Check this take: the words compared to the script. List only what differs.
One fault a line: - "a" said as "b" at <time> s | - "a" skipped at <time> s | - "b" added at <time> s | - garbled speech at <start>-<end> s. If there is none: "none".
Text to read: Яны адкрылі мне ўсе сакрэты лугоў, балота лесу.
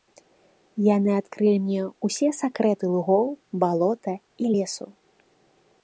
- "і" added at 4.5 s